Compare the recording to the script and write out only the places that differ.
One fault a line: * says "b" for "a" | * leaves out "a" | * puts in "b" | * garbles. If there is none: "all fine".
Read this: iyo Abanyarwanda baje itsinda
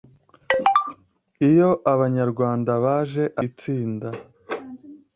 all fine